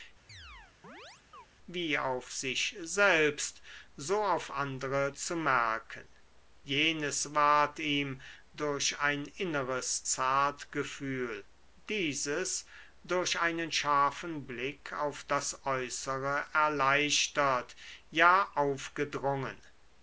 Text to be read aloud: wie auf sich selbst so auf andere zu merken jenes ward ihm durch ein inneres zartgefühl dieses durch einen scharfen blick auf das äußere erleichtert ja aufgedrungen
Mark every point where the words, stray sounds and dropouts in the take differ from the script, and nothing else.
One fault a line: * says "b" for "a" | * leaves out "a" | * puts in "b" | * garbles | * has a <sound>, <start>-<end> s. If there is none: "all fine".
* has a chirp, 0.3-1.5 s